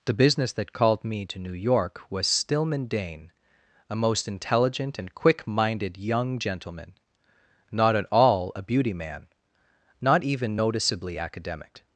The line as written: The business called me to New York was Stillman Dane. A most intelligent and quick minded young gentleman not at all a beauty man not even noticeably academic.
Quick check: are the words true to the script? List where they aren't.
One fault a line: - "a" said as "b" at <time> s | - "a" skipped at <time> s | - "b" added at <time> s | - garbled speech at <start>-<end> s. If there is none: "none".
- "that" added at 0.5 s